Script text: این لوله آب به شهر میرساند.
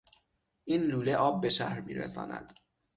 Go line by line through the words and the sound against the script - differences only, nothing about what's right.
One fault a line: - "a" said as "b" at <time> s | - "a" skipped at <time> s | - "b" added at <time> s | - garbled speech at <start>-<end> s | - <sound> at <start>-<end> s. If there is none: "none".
none